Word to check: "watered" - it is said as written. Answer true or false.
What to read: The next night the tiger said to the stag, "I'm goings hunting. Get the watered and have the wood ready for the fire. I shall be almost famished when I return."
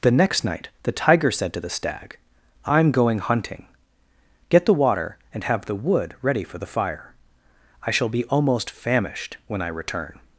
false